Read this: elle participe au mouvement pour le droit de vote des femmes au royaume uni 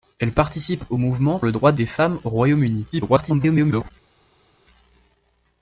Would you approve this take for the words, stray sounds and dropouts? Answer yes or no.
no